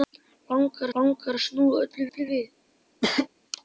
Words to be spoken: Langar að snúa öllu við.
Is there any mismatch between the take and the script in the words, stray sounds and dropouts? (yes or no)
yes